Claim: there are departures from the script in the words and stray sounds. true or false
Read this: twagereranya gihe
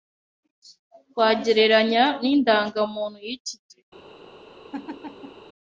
true